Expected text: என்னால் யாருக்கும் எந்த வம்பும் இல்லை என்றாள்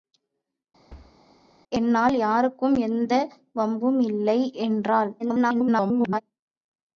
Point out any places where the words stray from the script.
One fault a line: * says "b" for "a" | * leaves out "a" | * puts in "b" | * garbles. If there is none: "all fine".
* garbles